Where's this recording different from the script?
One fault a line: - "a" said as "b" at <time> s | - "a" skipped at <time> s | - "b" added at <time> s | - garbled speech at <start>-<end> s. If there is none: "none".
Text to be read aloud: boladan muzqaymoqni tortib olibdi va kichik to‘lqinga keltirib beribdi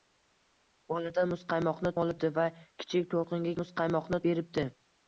- "tortib" skipped at 1.9 s
- "keltirib" said as "muzqaymoqni" at 3.6 s